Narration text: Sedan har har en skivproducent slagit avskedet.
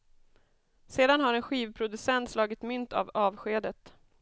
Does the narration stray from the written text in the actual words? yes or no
yes